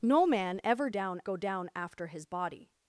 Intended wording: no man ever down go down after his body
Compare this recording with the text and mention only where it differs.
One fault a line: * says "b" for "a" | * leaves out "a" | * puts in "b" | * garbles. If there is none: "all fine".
all fine